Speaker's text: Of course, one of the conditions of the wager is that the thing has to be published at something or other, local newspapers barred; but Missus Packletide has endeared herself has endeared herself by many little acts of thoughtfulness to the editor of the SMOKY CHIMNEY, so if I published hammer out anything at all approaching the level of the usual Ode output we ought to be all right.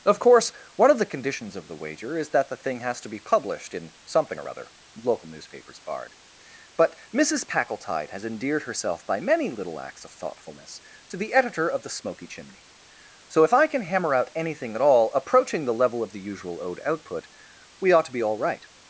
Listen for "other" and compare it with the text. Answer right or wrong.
right